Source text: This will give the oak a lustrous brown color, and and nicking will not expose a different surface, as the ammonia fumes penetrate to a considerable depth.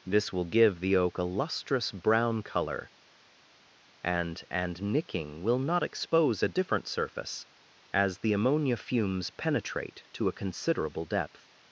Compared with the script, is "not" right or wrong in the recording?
right